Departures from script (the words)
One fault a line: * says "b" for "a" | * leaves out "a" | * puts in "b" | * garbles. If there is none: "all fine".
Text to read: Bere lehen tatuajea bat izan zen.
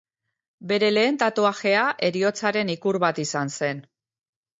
* puts in "heriotzaren ikur"